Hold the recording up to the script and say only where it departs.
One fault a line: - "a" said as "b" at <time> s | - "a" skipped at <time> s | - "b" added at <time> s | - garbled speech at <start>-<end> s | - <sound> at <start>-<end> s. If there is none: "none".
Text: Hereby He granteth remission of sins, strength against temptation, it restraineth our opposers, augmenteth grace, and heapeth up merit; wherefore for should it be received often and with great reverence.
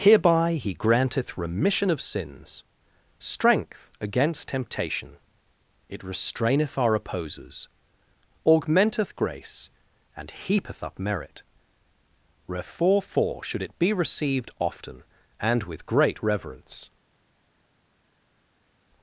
none